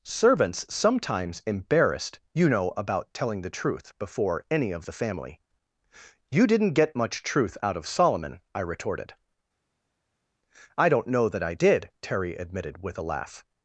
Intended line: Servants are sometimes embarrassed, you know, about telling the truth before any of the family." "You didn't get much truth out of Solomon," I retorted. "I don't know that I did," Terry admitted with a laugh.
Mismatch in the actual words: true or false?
true